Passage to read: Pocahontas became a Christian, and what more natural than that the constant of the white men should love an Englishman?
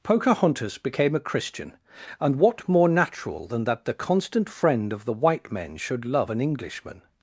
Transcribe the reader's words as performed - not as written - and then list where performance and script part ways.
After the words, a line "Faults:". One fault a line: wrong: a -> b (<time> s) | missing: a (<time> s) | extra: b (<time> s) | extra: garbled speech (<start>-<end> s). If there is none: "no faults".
Pocahontas became a Christian, and what more natural than that the constant friend of the white men should love an Englishman?
Faults:
extra: friend (4.5 s)